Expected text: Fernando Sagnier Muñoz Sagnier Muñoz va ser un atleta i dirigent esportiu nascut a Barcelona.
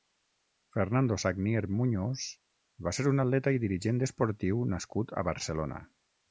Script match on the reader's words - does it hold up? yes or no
no